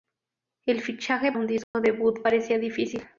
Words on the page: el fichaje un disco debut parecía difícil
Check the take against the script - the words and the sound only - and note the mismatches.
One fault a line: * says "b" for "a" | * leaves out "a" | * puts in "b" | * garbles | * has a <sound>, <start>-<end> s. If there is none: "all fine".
* has a dropout, 1.6-1.7 s